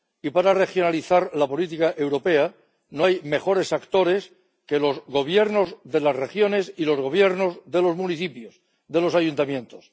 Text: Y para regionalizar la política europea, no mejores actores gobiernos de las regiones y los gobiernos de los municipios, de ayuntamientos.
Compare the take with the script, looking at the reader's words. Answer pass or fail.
fail